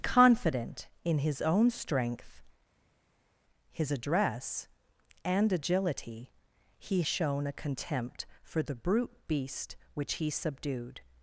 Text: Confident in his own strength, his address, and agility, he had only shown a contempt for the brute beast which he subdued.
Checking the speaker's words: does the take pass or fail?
fail